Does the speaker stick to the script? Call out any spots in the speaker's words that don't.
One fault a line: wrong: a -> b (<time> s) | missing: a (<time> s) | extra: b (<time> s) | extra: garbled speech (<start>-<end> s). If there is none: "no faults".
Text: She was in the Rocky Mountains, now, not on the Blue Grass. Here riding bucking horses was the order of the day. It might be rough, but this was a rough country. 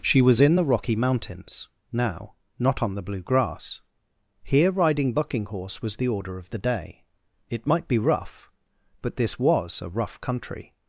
wrong: horses -> horse (5.5 s)